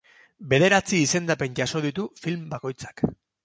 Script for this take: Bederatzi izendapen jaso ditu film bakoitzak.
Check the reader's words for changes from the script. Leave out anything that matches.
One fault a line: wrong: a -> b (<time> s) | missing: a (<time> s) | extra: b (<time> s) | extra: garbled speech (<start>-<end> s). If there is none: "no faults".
no faults